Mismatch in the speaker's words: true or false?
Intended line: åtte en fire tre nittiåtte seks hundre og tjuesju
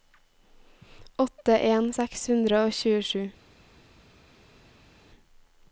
true